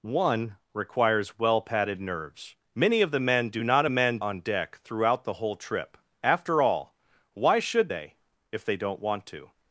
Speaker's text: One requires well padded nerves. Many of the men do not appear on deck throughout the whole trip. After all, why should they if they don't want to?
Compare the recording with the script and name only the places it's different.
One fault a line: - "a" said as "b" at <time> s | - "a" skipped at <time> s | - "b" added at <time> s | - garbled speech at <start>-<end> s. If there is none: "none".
- "appear" said as "men" at 3.9 s